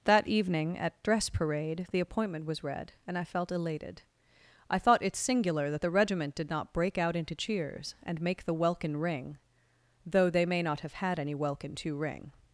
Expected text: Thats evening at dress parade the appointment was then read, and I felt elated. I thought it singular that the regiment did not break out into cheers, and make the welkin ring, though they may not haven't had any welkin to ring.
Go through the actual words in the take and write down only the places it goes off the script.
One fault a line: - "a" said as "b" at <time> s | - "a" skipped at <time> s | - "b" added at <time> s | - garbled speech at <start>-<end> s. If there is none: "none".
- "Thats" said as "That" at 0.1 s
- "then" skipped at 2.6 s
- "haven't" said as "have" at 10.8 s